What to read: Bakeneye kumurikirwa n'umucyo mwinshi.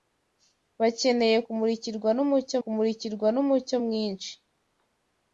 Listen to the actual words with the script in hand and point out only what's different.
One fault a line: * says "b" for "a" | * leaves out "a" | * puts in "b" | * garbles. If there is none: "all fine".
* puts in "kumurikirwa n'umucyo"